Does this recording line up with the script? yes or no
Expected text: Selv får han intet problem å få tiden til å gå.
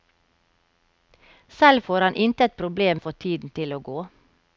yes